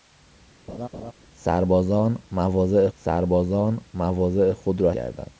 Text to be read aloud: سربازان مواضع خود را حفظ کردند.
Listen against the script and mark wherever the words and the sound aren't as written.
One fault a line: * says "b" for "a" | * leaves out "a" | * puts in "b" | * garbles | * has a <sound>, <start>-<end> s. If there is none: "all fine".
* has a laugh, 0.7-1.1 s
* puts in "سربازان مواضع"
* leaves out "حفظ"